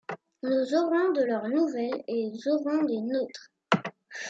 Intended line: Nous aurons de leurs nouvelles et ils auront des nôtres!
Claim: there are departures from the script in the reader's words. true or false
false